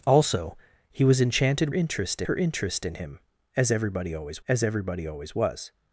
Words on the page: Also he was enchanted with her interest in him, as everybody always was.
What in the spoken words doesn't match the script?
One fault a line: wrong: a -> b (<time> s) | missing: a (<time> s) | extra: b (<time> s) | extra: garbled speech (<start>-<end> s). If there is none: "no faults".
wrong: with -> interest (1.7 s)
extra: as everybody always (4.5 s)